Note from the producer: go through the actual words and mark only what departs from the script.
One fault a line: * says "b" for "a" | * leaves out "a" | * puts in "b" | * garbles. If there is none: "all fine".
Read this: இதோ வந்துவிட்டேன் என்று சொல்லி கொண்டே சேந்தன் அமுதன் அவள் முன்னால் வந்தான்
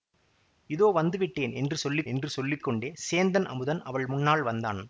* puts in "என்று சொல்லி"